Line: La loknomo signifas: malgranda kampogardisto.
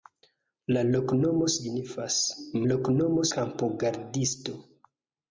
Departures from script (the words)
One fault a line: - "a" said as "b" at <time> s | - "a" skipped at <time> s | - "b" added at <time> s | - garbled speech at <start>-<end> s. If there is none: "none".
- "malgranda" said as "loknomo" at 2.7 s